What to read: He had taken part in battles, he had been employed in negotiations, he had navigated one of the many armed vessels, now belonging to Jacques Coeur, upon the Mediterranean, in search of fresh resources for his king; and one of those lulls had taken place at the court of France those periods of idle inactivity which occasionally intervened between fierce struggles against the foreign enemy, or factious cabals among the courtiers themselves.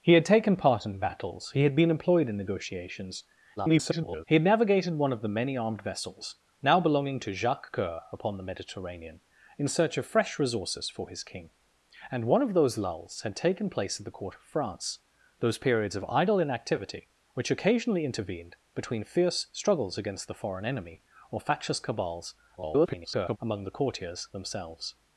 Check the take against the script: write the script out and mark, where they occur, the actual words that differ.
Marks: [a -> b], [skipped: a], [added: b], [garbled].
He had taken part in battles, he had been employed in negotiations, [garbled] he had navigated one of the many armed vessels, now belonging to Jacques Coeur, upon the Mediterranean, in search of fresh resources for his king; and one of those lulls had taken place at the court of France those periods of idle inactivity which occasionally intervened between fierce struggles against the foreign enemy, or factious cabals [garbled] among the courtiers themselves.